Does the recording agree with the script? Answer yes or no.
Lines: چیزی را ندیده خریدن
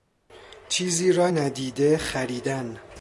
yes